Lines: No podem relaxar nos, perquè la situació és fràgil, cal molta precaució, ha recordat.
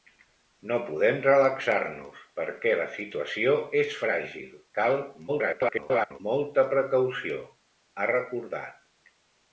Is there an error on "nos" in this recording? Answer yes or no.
no